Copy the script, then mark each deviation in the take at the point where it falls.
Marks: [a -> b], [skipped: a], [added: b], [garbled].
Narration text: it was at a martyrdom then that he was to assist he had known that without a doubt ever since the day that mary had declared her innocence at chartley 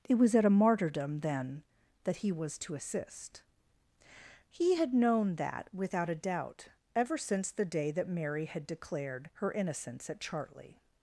it was at a martyrdom then that he was to assist he had known that without a doubt ever since the day that mary had declared her innocence at chartley